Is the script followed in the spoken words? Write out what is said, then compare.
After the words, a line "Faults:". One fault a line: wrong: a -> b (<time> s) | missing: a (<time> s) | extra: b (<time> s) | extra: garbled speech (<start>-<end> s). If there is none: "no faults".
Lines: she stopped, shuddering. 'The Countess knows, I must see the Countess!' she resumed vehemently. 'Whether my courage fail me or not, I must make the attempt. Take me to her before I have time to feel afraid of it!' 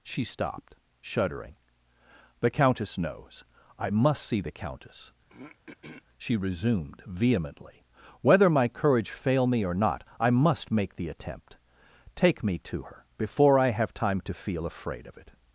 she stopped, shuddering. 'The Countess knows, I must see the Countess!' she resumed vehemently. 'Whether my courage fail me or not, I must make the attempt. Take me to her before I have time to feel afraid of it!'
Faults:
no faults